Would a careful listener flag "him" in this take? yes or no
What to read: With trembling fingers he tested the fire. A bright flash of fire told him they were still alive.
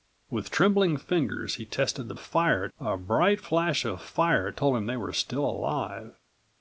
no